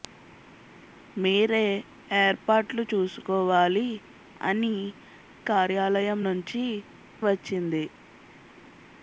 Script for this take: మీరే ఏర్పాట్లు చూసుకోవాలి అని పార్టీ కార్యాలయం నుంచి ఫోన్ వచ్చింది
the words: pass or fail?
fail